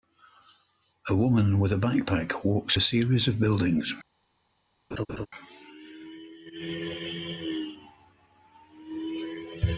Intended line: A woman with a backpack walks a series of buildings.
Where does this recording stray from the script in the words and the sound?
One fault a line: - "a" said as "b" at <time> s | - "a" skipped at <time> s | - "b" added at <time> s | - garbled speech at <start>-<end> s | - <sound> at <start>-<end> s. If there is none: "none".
- laugh at 4.9-5.3 s